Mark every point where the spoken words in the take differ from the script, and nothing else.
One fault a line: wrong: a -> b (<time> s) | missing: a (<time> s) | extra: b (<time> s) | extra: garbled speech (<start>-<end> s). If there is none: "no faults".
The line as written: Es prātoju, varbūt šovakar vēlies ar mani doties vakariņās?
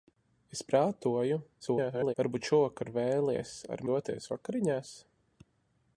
extra: garbled speech (1.6-2.1 s)
missing: mani (3.8 s)